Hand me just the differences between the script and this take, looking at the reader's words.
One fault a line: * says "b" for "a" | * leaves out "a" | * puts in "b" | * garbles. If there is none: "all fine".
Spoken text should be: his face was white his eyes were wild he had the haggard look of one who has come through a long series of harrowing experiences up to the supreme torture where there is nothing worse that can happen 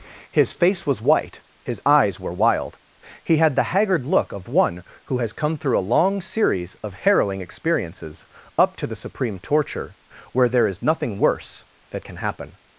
all fine